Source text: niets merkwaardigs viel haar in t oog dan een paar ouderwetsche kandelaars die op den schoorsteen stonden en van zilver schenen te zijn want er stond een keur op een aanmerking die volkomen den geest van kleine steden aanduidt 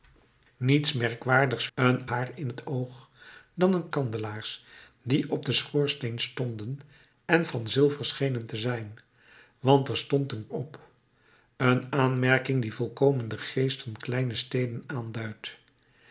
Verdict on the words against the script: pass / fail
fail